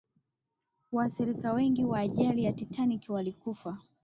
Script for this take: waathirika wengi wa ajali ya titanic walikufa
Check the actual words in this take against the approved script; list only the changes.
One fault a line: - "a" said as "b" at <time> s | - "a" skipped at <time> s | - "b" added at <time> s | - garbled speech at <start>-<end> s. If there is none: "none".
none